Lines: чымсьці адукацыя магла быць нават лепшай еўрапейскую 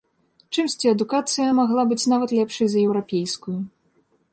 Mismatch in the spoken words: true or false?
true